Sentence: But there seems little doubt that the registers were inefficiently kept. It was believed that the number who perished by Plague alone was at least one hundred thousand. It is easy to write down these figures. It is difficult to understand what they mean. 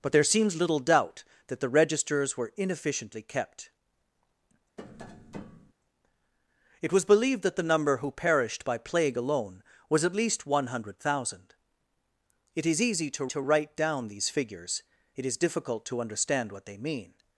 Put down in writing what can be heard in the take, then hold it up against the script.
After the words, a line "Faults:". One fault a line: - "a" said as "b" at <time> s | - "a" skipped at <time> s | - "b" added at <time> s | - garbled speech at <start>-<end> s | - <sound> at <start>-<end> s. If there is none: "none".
But there seems little doubt that the registers were inefficiently kept. It was believed that the number who perished by Plague alone was at least one hundred thousand. It is easy to to write down these figures. It is difficult to understand what they mean.
Faults:
- tap at 4.8-5.7 s
- "to" added at 13.3 s